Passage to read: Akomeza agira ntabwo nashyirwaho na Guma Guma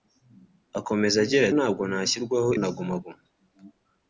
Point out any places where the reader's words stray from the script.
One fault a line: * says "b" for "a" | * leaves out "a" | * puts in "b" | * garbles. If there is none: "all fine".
all fine